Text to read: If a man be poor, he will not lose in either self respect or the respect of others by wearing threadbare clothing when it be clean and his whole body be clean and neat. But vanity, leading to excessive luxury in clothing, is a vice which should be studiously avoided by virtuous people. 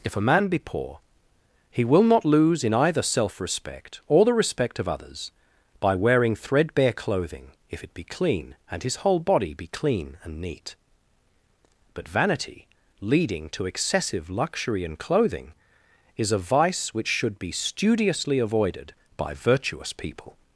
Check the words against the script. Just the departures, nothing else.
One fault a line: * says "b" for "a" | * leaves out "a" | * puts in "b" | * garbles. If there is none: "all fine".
* says "if" for "when"